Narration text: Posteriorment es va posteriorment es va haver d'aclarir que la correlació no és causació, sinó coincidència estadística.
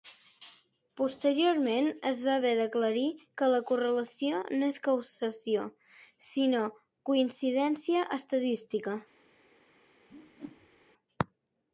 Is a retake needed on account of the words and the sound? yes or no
yes